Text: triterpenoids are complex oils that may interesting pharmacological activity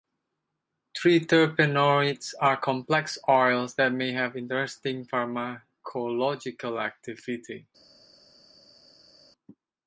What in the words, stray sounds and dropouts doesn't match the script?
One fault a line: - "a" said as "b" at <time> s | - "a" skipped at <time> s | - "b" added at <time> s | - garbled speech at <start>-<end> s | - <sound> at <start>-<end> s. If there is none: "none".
- "have" added at 4.1 s